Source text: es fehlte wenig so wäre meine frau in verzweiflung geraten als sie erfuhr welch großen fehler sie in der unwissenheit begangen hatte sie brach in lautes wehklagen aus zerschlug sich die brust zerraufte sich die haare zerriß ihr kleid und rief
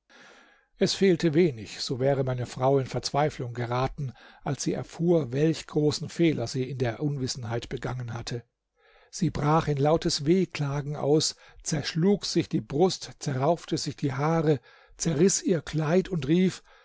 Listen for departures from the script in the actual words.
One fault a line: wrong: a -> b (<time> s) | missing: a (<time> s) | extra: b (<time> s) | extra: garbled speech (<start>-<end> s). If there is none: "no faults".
no faults